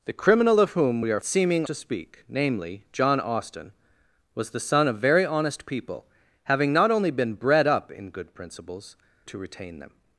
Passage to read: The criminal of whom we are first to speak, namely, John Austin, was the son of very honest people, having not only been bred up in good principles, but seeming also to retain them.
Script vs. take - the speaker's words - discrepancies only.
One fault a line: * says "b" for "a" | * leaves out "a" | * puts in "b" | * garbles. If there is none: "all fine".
* says "seeming" for "first"
* leaves out "but seeming also"